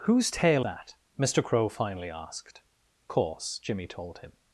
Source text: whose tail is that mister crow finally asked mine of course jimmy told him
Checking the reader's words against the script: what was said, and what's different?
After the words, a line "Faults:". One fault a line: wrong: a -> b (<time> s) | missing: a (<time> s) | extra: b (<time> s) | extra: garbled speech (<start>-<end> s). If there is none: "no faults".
whose tail that mister crow finally asked course jimmy told him
Faults:
missing: is (0.6 s)
missing: mine of (2.6 s)